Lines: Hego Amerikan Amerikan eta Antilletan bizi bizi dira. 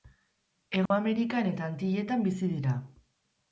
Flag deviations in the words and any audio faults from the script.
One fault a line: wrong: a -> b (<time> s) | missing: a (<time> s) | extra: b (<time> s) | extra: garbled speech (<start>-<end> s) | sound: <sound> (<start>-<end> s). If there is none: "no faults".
sound: dropout (0.9-0.9 s)
missing: Amerikan (1.5 s)
missing: bizi (2.5 s)